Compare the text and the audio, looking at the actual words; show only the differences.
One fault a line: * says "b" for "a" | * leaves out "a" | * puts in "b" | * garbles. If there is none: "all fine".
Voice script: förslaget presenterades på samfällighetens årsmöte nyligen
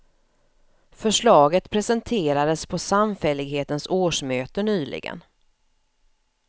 all fine